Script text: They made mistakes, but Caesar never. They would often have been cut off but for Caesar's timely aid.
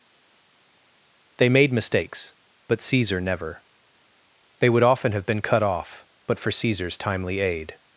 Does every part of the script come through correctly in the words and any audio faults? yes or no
yes